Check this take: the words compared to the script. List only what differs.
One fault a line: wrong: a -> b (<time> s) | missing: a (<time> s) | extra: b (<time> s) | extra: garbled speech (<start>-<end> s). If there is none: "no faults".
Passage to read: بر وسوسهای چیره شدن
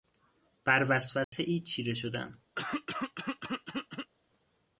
no faults